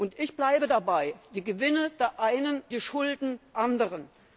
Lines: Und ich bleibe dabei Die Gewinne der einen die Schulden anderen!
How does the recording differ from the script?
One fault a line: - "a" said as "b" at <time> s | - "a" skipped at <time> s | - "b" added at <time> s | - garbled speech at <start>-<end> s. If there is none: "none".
none